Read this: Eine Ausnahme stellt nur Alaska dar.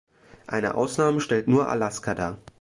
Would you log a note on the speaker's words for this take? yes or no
no